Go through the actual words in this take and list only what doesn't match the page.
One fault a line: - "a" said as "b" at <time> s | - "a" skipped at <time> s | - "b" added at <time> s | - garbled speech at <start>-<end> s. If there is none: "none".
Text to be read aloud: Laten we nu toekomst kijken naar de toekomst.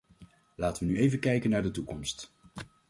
- "toekomst" said as "even" at 1.0 s